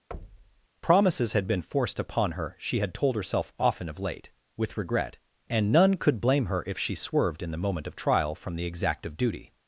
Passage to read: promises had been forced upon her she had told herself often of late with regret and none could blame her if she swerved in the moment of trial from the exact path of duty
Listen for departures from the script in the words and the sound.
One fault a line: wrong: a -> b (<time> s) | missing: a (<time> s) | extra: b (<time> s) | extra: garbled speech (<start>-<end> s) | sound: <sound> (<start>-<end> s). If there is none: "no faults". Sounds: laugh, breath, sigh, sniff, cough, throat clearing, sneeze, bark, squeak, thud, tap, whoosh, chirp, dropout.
sound: thud (0.1-0.7 s)
missing: path (9.0 s)